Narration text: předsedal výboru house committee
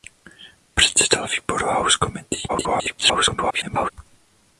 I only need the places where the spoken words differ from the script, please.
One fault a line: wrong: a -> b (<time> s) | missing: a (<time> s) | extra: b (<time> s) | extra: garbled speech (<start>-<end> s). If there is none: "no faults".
extra: garbled speech (2.5-3.9 s)